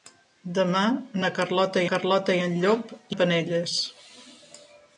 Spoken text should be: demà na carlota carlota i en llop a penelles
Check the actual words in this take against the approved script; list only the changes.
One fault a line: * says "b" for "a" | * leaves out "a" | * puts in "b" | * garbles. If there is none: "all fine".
all fine